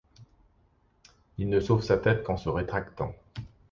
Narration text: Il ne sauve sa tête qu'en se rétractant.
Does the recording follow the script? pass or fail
pass